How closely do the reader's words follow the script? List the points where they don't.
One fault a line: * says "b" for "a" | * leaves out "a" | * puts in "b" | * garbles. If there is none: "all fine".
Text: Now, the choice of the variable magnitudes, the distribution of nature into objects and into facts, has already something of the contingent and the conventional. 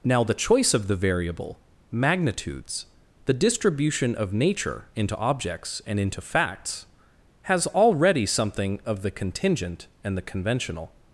all fine